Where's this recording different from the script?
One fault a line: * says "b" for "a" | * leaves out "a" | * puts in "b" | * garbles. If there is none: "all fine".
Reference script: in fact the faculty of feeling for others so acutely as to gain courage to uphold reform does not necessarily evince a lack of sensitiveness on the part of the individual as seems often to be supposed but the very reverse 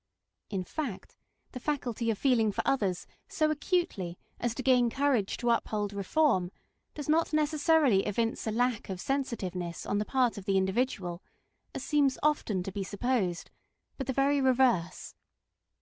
all fine